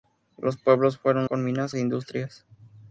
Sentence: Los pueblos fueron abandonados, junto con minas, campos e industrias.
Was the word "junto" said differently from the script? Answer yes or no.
yes